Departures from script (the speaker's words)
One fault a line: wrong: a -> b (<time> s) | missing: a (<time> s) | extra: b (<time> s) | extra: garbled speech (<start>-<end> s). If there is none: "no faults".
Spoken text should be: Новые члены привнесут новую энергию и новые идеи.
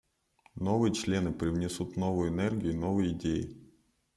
no faults